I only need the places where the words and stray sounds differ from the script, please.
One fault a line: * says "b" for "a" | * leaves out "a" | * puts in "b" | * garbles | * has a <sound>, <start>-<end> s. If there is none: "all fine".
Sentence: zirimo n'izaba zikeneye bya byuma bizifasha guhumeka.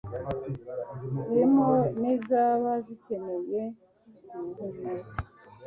* leaves out "bya byuma bizifasha"